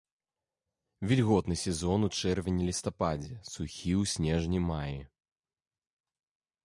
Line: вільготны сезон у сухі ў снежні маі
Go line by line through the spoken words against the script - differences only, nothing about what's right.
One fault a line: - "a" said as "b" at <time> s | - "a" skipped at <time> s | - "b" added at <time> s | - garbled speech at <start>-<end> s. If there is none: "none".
- "чэрвені лістападзе" added at 2.1 s